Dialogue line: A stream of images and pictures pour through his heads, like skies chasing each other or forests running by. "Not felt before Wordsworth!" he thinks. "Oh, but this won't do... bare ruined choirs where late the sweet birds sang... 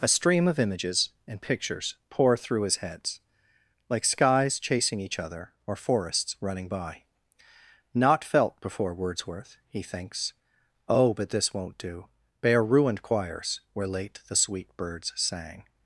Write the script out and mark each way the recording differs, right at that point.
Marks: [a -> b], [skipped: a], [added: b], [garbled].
A stream of images and pictures pour through his heads, like skies chasing each other or forests running by. "Not felt before Wordsworth!" he thinks. "Oh, but this won't do... bare ruined choirs where late the sweet birds sang...